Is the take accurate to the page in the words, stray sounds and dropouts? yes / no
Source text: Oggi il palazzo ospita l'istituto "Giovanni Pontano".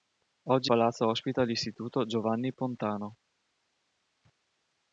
no